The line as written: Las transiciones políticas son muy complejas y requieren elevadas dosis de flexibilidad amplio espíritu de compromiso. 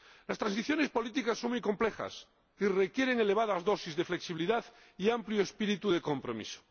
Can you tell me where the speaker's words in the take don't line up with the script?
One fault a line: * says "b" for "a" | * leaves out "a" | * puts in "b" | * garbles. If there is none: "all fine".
* puts in "y"